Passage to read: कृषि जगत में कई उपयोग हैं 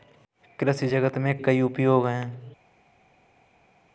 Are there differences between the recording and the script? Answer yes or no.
no